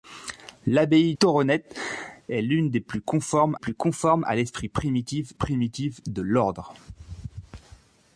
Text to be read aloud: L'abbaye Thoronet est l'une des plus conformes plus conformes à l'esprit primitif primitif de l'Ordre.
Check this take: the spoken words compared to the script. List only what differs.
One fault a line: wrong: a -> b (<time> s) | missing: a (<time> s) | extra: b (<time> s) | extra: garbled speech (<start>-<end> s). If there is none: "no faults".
no faults